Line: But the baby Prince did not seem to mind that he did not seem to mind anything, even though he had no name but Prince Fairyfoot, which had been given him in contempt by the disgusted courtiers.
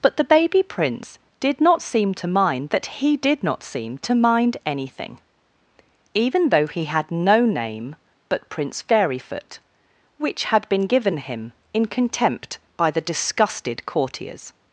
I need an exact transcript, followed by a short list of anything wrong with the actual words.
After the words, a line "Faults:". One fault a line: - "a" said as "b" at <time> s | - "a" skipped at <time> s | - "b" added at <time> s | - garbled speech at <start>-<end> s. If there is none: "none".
But the baby Prince did not seem to mind that he did not seem to mind anything, even though he had no name but Prince Fairyfoot, which had been given him in contempt by the disgusted courtiers.
Faults:
none